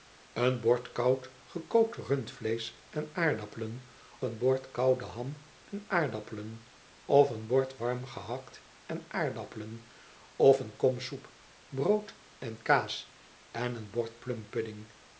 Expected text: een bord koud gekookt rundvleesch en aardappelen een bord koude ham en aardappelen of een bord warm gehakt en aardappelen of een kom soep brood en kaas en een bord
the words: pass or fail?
pass